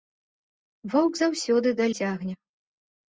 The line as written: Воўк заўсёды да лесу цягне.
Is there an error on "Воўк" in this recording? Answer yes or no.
no